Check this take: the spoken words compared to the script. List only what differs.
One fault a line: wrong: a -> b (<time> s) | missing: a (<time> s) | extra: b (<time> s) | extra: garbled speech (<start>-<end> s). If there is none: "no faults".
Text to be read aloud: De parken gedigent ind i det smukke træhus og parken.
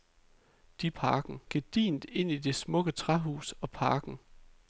no faults